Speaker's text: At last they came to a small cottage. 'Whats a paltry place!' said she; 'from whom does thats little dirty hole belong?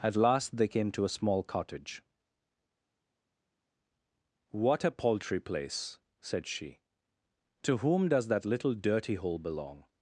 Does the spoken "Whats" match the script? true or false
false